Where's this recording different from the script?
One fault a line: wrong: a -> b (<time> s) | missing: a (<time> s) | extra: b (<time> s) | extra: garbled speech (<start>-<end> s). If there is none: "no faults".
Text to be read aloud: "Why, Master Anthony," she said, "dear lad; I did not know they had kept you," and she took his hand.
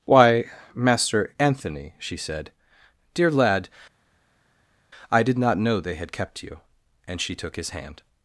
no faults